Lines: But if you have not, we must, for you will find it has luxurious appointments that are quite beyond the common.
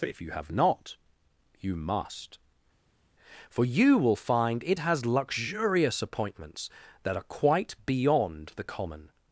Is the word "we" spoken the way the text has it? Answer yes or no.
no